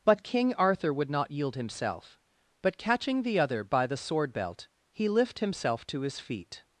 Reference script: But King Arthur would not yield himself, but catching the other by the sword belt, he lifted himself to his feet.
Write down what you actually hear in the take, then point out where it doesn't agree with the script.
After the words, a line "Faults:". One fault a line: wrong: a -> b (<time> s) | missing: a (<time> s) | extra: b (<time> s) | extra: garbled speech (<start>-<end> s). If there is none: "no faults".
But King Arthur would not yield himself, but catching the other by the sword belt, he lift himself to his feet.
Faults:
wrong: lifted -> lift (5.1 s)